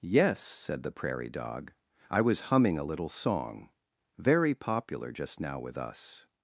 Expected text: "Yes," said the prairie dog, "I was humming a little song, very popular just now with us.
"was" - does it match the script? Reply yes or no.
yes